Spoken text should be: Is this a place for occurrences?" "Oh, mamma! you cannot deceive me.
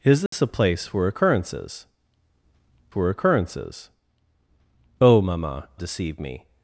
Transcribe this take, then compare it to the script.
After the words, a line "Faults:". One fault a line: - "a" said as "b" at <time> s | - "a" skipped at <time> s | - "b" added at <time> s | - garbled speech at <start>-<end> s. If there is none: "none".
Is this a place for occurrences for occurrences?" "Oh, mamma! deceive me.
Faults:
- "for occurrences" added at 2.9 s
- "you cannot" skipped at 5.7 s